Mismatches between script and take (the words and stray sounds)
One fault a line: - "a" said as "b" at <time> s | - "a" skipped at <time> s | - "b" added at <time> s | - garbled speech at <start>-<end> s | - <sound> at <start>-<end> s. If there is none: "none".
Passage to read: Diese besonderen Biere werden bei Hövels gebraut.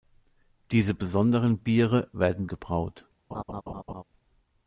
- "bei Hövels" skipped at 2.5 s
- laugh at 3.3-4.0 s